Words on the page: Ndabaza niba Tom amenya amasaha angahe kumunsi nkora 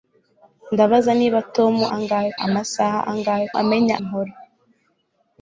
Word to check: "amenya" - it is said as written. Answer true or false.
false